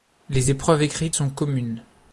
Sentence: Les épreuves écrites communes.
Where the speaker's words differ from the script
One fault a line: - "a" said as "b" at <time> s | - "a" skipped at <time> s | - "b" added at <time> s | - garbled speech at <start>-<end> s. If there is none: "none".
- "sont" added at 1.1 s